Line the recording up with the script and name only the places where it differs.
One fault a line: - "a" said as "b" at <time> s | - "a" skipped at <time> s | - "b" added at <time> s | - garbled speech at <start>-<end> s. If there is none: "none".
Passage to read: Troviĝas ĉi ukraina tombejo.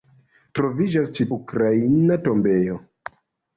none